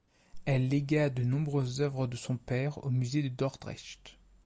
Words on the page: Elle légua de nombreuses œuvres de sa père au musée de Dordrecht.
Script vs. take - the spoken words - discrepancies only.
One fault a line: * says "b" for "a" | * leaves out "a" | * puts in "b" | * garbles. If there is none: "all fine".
* says "son" for "sa"